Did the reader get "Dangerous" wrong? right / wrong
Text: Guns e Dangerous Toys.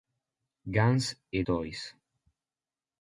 wrong